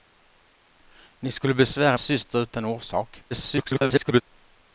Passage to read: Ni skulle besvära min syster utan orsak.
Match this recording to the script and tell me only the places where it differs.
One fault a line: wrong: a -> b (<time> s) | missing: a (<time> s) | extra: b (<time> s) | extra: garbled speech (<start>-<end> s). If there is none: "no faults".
missing: min (2.0 s)
extra: garbled speech (3.3-4.2 s)